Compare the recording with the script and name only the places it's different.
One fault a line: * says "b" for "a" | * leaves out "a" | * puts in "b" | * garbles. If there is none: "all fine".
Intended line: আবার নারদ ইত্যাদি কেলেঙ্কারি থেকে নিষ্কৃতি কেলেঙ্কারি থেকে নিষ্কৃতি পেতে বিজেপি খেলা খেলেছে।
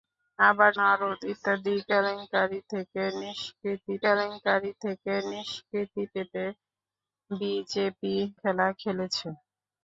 all fine